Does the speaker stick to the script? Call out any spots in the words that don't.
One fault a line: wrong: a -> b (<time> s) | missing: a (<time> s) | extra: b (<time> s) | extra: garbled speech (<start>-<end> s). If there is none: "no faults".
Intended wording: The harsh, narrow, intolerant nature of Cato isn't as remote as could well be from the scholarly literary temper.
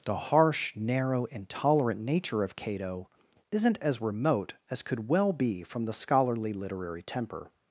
no faults